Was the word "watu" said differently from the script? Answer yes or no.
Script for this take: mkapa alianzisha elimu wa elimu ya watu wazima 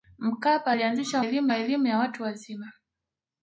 no